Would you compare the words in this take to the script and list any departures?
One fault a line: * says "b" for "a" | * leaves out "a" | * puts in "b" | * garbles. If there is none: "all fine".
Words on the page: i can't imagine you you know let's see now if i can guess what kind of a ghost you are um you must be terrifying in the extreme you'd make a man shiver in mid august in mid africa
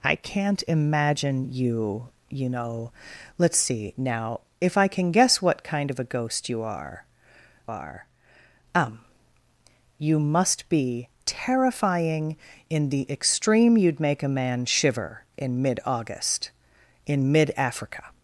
* puts in "are"